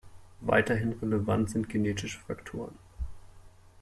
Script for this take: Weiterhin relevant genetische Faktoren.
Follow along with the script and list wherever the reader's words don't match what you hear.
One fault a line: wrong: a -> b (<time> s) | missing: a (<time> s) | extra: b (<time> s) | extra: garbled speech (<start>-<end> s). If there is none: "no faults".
extra: sind (1.5 s)